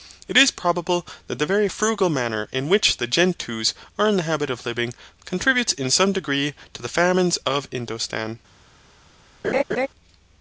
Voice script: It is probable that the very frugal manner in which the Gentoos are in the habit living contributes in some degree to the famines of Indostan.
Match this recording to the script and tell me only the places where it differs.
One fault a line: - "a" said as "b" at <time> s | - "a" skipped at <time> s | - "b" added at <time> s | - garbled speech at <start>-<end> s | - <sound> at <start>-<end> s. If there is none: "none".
- "of" added at 4.5 s
- laugh at 9.4-9.9 s